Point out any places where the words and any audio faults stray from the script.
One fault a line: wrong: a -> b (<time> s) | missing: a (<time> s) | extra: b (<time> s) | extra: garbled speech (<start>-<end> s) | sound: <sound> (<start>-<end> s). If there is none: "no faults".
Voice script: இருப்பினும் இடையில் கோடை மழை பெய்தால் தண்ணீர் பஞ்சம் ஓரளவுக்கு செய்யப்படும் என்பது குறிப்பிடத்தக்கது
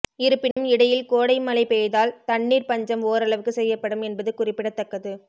sound: dropout (0.5-0.6 s)